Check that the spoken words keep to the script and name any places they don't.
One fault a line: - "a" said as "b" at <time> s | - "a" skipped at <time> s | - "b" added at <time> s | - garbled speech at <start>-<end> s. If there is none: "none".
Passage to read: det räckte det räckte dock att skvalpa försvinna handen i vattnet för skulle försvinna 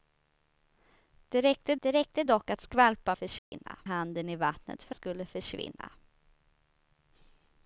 none